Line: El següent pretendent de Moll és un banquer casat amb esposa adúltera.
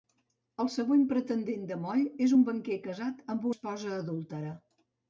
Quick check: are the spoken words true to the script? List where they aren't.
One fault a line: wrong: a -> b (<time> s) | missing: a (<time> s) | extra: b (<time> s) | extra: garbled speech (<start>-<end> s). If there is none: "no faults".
no faults